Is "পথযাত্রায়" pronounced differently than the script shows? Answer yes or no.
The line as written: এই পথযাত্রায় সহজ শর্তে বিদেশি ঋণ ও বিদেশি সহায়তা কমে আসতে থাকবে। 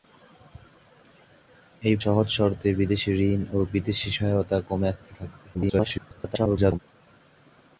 yes